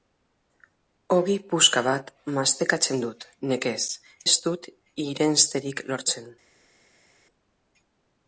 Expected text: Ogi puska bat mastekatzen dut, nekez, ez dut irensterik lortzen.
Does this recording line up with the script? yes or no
yes